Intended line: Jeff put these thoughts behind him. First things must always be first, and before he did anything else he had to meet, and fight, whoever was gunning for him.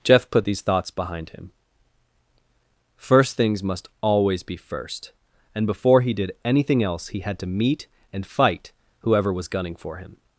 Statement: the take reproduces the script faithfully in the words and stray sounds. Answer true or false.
true